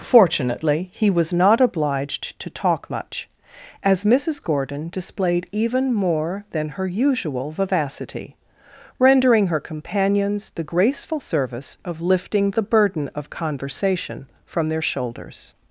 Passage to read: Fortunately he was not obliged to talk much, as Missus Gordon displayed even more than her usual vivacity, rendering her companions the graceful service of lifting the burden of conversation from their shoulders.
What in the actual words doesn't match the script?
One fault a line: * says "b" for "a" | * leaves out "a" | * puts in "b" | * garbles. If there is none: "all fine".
all fine